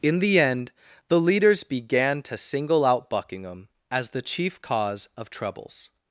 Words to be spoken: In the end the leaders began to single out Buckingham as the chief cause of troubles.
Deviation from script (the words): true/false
false